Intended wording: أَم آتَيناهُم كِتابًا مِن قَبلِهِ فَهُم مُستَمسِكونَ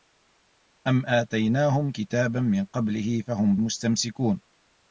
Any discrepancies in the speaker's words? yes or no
no